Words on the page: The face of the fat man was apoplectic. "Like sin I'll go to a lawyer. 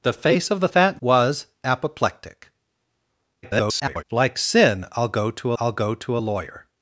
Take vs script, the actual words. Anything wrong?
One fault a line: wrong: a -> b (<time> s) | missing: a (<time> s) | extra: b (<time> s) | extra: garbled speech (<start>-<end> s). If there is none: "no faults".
missing: man (1.0 s)
extra: garbled speech (3.4-4.0 s)
extra: I'll go to (5.5 s)